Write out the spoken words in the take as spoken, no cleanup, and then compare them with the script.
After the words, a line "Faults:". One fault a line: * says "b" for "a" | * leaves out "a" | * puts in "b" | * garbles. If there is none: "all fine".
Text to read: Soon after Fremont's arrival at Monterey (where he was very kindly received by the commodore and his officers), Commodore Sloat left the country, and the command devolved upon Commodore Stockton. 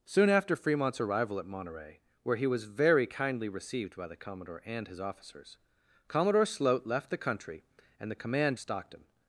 Soon after Fremont's arrival at Monterey (where he was very kindly received by the commodore and his officers), Commodore Sloat left the country, and the command Stockton.
Faults:
* leaves out "devolved upon Commodore"